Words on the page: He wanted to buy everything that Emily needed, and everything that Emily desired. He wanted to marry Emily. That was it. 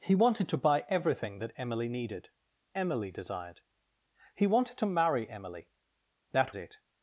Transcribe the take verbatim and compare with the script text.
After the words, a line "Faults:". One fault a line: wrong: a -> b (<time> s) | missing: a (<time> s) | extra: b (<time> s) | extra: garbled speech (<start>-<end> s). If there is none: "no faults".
He wanted to buy everything that Emily needed, Emily desired. He wanted to marry Emily. That it.
Faults:
missing: and everything that (2.3 s)
missing: was (6.6 s)